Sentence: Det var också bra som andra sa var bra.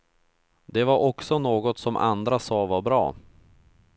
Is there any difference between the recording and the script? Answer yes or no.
yes